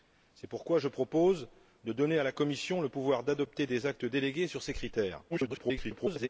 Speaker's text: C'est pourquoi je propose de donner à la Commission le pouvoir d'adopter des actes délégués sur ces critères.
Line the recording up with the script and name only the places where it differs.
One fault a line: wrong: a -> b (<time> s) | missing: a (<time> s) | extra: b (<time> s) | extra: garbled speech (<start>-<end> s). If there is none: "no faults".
extra: garbled speech (5.3-6.3 s)